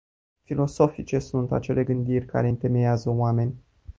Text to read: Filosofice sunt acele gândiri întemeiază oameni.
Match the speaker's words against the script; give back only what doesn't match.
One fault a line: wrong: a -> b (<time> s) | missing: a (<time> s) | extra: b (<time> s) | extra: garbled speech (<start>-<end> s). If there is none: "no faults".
extra: care (2.2 s)